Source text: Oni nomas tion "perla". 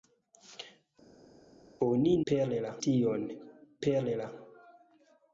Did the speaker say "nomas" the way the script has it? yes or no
no